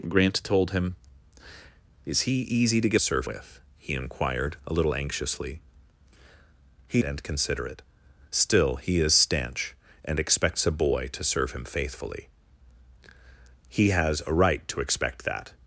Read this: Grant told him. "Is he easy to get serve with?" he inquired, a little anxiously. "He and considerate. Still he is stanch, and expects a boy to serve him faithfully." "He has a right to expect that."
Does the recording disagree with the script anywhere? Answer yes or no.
no